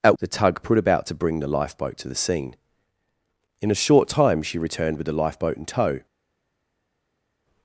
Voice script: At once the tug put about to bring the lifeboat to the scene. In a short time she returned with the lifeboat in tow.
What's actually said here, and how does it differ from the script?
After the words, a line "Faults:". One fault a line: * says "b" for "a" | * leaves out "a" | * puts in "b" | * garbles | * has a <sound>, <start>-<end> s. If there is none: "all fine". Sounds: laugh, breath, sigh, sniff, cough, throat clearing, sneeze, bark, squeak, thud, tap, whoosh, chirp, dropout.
At the tug put about to bring the lifeboat to the scene. In a short time she returned with the lifeboat in tow.
Faults:
* leaves out "once"